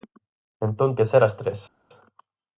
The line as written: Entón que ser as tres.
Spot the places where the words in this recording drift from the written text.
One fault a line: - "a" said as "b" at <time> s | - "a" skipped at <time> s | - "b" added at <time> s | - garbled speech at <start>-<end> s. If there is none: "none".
none